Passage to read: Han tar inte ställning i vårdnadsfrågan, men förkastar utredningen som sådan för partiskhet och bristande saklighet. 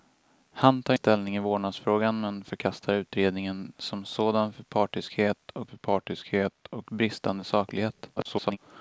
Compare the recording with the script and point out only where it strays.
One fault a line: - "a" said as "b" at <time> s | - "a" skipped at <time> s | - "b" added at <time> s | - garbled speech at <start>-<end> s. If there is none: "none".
- "inte" skipped at 0.9 s
- "för partiskhet och" added at 5.7 s
- garbled speech at 8.2-8.6 s